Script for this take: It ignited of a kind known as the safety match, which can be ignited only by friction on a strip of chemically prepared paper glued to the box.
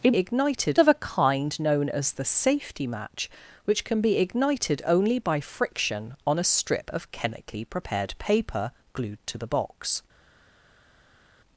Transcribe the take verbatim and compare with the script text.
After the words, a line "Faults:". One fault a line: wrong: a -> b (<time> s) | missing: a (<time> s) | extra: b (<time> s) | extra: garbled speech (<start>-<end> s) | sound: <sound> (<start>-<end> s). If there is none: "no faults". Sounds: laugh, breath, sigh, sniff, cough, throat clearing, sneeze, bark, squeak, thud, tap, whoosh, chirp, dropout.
It ignited of a kind known as the safety match, which can be ignited only by friction on a strip of chemically prepared paper glued to the box.
Faults:
no faults